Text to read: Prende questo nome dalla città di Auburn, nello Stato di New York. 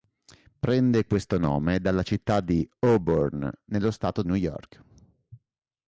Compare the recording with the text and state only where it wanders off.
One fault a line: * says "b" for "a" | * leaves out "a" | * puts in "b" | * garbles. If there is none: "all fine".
* leaves out "di"